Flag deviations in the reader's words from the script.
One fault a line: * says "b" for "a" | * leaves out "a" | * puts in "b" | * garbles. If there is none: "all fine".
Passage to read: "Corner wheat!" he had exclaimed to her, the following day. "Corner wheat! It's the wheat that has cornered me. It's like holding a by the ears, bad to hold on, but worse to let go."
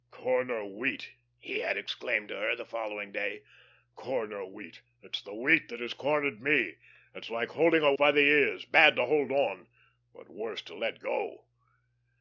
all fine